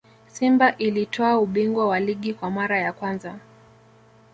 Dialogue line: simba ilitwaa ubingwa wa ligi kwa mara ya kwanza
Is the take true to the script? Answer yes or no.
yes